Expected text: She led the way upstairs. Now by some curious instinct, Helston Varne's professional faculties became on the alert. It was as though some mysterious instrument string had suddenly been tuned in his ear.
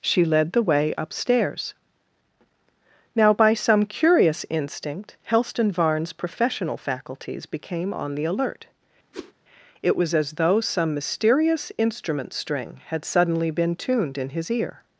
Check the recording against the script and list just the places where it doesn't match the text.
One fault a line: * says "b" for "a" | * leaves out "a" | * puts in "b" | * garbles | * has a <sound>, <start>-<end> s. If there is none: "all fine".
* has a whoosh, 9.1-9.3 s